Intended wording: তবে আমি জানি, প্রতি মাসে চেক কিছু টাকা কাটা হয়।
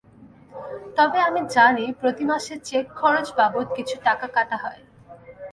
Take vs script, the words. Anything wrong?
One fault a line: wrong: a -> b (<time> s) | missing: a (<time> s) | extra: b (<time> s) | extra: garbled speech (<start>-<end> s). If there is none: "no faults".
extra: খরচ বাবদ (3.0 s)